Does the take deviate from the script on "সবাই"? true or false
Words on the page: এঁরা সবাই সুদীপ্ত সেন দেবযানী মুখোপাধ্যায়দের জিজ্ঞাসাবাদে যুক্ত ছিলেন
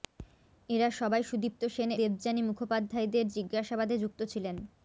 false